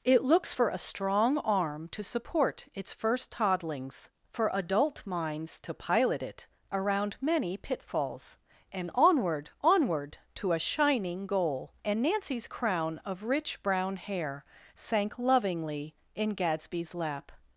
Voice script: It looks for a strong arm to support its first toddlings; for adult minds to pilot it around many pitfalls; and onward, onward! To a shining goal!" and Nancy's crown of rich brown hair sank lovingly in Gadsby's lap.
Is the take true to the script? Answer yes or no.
yes